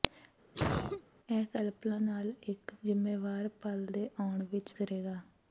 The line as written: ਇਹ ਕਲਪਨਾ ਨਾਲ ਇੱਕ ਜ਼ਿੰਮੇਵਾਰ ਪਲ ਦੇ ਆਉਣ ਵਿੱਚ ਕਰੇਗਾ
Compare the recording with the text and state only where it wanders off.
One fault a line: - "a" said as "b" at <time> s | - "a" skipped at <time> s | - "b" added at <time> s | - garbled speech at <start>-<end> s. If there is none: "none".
none